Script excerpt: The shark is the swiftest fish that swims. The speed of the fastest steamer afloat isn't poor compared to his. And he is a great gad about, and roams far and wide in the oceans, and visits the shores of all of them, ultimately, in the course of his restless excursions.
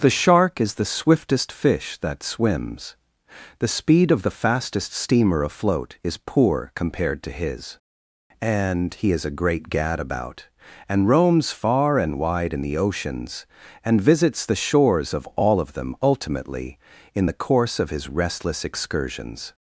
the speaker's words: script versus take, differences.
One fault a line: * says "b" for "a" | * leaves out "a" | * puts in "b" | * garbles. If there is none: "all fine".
* says "is" for "isn't"